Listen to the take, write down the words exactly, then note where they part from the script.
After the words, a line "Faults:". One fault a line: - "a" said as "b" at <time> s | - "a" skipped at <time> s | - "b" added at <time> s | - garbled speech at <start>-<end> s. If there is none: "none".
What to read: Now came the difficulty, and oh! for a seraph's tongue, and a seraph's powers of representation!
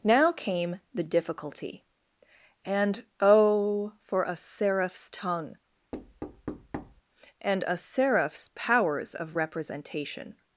Now came the difficulty, and oh! for a seraph's tongue, and a seraph's powers of representation!
Faults:
none